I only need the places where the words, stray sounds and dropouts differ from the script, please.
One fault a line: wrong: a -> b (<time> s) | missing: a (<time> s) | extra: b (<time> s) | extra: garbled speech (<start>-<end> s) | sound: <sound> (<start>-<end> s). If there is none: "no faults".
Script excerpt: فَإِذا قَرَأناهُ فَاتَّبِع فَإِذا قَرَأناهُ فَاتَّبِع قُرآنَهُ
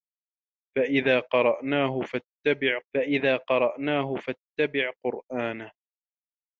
no faults